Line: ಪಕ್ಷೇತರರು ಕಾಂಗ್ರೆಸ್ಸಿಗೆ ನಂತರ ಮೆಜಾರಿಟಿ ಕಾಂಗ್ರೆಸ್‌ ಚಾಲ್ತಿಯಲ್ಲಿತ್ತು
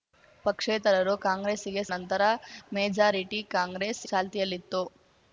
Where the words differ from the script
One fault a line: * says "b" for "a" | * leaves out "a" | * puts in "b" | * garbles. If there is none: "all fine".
all fine